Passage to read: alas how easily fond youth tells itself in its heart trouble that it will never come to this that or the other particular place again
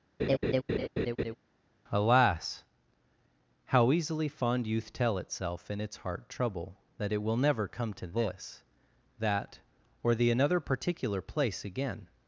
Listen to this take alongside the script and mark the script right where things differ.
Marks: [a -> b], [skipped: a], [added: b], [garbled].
alas how easily fond youth [tells -> tell] itself in its heart trouble that it will never come to this that or the [other -> another] particular place again